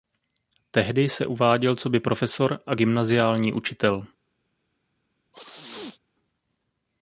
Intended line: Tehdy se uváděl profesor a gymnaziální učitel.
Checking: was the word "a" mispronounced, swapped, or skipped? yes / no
no